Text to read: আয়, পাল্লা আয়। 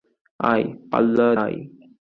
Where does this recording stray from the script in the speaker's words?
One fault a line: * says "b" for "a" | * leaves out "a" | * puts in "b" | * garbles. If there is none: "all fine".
all fine